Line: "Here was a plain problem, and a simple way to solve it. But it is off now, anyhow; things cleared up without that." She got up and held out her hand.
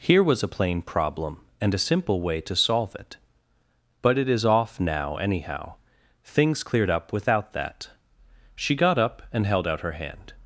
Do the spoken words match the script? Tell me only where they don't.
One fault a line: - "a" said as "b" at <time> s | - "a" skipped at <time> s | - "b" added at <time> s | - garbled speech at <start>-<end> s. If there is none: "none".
none